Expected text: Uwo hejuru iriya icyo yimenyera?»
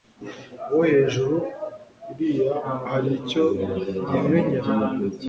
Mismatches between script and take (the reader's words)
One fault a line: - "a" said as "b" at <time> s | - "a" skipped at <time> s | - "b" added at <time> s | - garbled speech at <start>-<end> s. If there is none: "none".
- "hari" added at 2.9 s